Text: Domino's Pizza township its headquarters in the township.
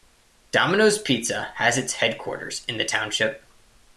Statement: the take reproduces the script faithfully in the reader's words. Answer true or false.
false